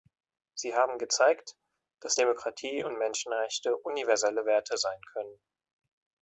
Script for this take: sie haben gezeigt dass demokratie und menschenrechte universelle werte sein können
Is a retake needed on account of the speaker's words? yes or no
no